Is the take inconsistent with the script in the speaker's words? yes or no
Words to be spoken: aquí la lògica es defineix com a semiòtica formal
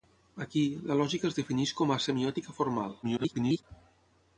yes